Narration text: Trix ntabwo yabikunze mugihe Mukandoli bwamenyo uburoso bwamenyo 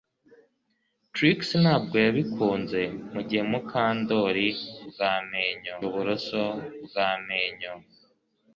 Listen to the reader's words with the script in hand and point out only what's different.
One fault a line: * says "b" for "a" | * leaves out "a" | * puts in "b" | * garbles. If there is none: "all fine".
all fine